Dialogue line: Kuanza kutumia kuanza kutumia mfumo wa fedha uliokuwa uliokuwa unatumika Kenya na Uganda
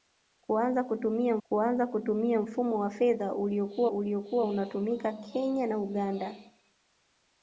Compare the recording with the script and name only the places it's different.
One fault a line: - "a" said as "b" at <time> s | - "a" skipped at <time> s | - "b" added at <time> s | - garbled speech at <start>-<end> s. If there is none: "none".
none